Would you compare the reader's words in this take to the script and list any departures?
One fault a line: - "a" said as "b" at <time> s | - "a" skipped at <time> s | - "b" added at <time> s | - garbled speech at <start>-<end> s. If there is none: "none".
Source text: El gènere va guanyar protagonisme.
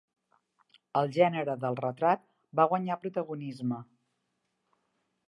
- "del retrat" added at 1.6 s